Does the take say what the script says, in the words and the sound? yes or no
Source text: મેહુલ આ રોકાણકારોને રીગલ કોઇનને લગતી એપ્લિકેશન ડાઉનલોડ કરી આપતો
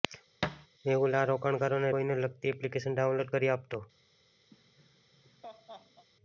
no